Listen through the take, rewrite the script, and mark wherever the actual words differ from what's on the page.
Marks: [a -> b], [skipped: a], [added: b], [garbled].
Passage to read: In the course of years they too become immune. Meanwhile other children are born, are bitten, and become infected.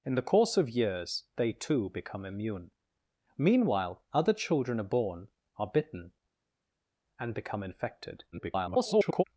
In the course of years they too become immune. Meanwhile other children are born, are bitten, and become infected. [garbled]